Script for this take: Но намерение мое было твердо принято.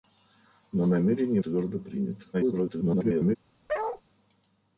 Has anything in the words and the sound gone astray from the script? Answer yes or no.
yes